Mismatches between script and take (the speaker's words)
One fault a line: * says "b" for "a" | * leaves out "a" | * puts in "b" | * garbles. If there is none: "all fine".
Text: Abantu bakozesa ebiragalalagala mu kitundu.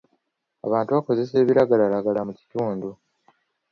all fine